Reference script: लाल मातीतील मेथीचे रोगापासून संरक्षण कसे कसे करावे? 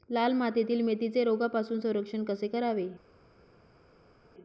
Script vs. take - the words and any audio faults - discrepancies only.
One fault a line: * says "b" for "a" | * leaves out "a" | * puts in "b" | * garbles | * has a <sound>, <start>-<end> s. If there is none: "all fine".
* leaves out "कसे"